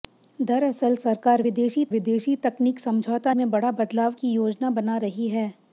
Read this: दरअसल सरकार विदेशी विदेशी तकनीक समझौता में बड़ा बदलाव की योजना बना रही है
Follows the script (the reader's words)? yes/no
yes